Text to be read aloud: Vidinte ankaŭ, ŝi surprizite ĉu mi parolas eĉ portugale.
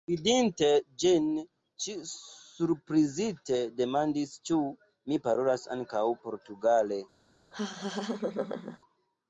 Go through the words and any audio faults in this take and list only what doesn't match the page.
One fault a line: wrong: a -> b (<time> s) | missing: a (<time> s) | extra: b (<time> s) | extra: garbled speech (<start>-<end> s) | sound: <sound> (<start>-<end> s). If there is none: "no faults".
wrong: ankaŭ -> ĝin (1.0 s)
extra: demandis (3.8 s)
wrong: eĉ -> ankaŭ (5.8 s)
sound: laugh (7.5-8.8 s)